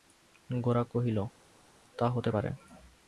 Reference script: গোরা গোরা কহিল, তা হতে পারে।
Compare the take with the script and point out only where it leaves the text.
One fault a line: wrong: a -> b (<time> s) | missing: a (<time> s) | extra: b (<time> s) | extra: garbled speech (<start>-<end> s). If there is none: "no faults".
missing: গোরা (0.8 s)